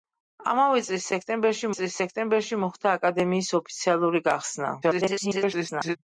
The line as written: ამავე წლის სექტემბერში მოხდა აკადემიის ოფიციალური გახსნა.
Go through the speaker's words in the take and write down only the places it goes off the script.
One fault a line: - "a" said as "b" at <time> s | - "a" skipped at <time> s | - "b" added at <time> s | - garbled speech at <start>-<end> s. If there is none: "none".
- "წლის სექტემბერში" added at 1.8 s
- garbled speech at 4.8-6.0 s